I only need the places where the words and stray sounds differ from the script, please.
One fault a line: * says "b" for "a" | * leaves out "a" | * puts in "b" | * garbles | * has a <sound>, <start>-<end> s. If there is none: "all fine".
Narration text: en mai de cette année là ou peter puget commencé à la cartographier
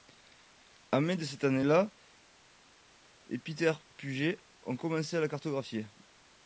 * says "et" for "ou"
* puts in "ont"